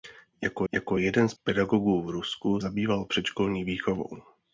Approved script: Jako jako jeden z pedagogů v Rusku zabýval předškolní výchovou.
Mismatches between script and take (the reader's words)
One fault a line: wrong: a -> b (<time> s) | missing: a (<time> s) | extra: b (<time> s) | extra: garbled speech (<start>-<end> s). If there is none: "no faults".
no faults